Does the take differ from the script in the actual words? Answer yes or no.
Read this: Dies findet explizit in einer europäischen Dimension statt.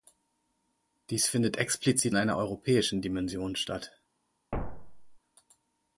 yes